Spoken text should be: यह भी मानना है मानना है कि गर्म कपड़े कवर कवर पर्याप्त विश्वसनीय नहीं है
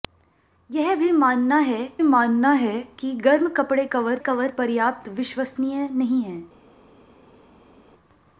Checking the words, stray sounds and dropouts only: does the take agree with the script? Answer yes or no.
yes